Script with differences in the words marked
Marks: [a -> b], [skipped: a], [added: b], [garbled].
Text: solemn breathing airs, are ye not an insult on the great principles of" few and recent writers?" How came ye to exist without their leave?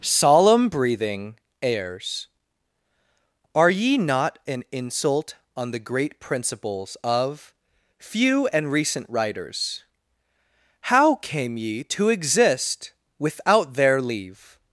solemn breathing airs, are ye not an insult on the great principles of" few and recent writers?" How came ye to exist without their leave?